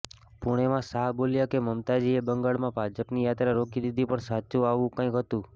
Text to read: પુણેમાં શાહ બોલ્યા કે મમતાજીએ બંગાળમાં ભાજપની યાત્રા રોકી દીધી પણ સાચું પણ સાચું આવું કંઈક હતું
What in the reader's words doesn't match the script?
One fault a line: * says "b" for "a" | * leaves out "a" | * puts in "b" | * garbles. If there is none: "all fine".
* leaves out "પણ સાચું"